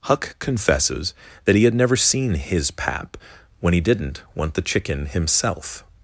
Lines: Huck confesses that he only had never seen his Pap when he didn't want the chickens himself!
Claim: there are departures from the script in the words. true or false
true